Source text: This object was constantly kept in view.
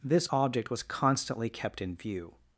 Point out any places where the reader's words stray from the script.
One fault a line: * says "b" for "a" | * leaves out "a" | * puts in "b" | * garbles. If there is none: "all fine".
all fine